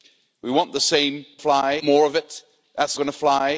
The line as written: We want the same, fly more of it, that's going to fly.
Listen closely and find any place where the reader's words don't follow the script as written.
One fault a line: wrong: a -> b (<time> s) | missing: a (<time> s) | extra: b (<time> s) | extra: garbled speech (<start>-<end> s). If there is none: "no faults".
no faults